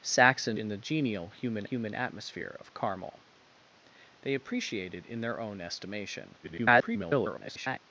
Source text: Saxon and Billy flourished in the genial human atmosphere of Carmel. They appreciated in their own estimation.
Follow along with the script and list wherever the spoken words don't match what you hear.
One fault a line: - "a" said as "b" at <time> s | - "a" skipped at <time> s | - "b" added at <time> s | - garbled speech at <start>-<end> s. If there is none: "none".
- "and Billy flourished" skipped at 0.6 s
- "human" added at 1.7 s
- garbled speech at 6.4-7.8 s